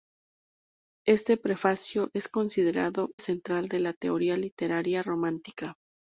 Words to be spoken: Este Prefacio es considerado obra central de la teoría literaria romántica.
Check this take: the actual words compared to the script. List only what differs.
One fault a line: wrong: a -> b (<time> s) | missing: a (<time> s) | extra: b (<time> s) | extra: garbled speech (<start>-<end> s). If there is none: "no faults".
missing: obra (3.1 s)